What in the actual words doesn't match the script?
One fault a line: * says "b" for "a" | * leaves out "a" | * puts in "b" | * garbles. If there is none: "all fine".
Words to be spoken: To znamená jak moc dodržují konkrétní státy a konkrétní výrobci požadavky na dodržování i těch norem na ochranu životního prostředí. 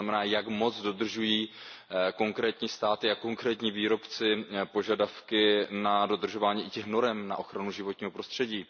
all fine